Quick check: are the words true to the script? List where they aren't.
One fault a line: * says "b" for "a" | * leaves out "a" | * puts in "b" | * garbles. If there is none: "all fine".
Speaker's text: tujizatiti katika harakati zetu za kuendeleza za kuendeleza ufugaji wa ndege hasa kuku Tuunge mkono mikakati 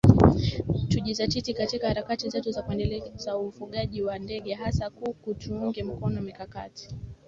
* leaves out "za kuendeleza"